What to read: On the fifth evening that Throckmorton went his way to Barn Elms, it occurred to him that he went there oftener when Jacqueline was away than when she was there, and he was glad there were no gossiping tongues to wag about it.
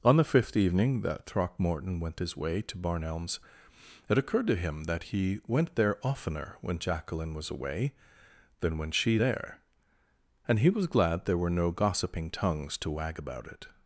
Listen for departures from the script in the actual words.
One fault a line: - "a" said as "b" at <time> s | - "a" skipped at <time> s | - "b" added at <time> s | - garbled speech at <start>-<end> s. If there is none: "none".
- "was" skipped at 9.2 s